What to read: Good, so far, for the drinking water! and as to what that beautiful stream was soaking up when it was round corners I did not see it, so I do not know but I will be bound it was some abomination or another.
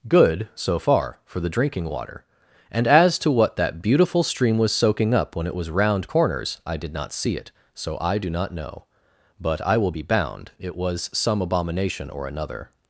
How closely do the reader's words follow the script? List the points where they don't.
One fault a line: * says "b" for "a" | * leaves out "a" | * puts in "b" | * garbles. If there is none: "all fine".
all fine